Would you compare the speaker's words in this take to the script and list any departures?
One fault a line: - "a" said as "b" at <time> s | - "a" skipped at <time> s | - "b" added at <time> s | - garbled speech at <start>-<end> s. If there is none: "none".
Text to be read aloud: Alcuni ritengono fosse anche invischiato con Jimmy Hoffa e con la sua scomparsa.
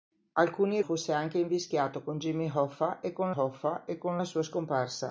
- "ritengono" skipped at 0.8 s
- "Hoffa e con" added at 3.3 s